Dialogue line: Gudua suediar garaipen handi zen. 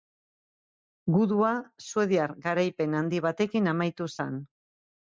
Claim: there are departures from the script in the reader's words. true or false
true